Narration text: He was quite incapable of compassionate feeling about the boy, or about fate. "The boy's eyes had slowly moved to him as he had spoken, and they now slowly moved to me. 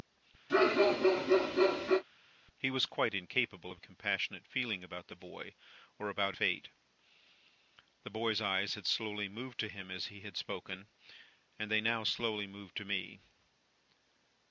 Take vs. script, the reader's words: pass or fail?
pass